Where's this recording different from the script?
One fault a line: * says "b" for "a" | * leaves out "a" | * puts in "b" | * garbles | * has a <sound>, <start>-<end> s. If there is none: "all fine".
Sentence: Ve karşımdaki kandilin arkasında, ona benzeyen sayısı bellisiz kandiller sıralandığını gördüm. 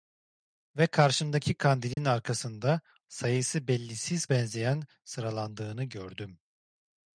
* has a dropout, 1.9-2.0 s
* leaves out "ona benzeyen"
* says "benzeyen" for "kandiller"